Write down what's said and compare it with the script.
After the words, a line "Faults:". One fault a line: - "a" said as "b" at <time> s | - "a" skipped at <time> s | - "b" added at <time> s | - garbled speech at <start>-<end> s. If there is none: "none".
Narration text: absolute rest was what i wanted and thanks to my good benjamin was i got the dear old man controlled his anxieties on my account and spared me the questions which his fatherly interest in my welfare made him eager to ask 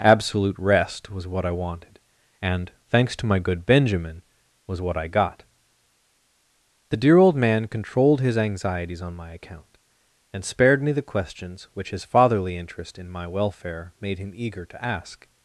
absolute rest was what i wanted and thanks to my good benjamin was what i got the dear old man controlled his anxieties on my account and spared me the questions which his fatherly interest in my welfare made him eager to ask
Faults:
- "what" added at 4.8 s